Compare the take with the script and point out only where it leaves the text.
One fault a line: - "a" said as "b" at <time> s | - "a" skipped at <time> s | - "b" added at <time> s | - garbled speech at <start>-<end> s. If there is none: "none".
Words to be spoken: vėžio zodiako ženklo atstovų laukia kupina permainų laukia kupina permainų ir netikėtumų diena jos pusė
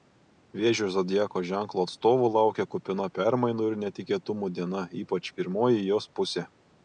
- "laukia kupina permainų" skipped at 3.7 s
- "ypač pirmoji" added at 5.0 s